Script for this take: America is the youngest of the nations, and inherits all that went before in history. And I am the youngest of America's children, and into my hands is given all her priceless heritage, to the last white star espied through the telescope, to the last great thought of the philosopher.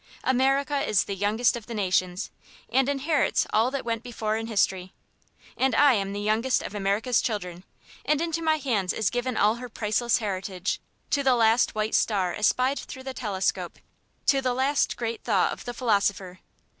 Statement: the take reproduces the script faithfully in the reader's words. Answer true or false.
true